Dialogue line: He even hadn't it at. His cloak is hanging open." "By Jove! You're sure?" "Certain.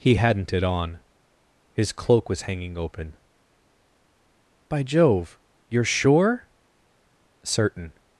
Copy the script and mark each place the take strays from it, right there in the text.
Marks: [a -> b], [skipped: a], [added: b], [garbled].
He [skipped: even] hadn't it [at. -> on] His cloak [is -> was] hanging open." "By Jove! You're sure?" "Certain.